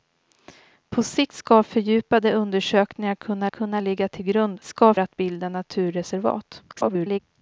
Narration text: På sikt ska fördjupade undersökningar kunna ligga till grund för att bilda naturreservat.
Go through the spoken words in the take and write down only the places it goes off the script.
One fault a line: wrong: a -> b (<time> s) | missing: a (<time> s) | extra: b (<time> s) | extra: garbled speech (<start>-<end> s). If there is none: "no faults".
extra: kunna (3.5 s)
wrong: för -> ska (4.6 s)
extra: garbled speech (6.7-7.2 s)